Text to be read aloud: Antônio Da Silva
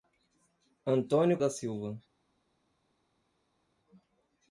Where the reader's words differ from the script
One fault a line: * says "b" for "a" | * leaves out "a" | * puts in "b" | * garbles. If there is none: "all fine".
all fine